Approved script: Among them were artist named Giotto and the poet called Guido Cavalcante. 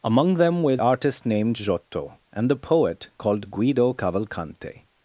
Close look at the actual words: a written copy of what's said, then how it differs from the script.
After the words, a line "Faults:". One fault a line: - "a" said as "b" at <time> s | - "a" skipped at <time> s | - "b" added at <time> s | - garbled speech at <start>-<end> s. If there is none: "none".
Among them were artist named Giotto and the poet called Guido Cavalcante.
Faults:
none